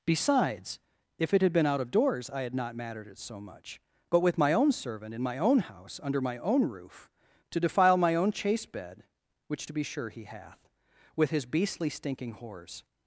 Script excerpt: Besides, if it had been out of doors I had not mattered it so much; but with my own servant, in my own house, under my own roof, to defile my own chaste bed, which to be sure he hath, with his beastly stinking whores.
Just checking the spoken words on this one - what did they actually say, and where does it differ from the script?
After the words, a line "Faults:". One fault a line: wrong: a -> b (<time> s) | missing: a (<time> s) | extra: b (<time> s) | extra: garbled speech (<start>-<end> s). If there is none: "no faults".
Besides, if it had been out of doors I had not mattered it so much; but with my own servant, in my own house, under my own roof, to defile my own chaste bed, which to be sure he hath, with his beastly stinking whores.
Faults:
no faults